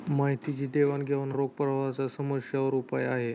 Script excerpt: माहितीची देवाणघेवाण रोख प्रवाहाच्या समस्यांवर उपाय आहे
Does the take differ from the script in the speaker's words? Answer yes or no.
no